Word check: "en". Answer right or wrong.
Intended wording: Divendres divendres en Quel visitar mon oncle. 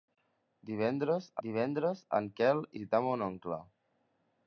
right